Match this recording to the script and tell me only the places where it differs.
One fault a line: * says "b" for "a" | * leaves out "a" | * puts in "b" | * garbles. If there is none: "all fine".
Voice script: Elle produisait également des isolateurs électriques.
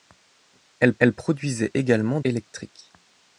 * puts in "elle"
* leaves out "des isolateurs"